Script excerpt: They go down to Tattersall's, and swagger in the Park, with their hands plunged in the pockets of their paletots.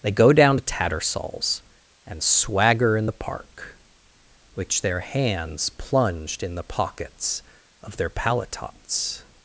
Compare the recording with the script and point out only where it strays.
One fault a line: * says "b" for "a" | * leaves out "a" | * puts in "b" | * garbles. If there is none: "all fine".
* says "which" for "with"